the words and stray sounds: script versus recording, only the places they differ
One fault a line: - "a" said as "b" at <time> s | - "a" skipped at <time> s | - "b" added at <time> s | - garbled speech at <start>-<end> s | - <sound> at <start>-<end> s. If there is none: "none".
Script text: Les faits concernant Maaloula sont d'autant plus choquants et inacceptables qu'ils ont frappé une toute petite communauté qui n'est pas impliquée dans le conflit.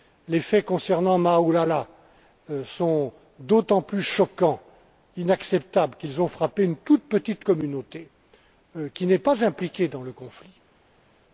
none